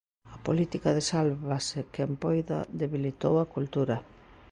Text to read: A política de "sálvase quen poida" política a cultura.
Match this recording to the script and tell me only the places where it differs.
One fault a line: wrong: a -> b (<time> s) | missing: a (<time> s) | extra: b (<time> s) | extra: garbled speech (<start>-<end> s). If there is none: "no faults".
wrong: política -> debilitou (2.8 s)